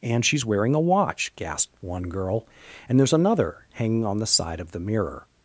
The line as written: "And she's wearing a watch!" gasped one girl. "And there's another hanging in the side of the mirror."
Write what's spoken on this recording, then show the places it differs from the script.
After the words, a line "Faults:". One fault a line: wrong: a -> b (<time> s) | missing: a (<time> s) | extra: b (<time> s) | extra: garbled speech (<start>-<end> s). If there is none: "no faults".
"And she's wearing a watch!" gasped one girl. "And there's another hanging on the side of the mirror."
Faults:
wrong: in -> on (4.1 s)